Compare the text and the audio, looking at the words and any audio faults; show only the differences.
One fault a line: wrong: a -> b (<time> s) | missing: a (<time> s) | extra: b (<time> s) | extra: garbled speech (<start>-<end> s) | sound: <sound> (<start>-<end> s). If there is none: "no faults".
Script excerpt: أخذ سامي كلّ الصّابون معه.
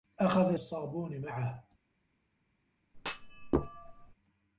missing: سامي كلّ (0.6 s)
sound: thud (2.9-4.1 s)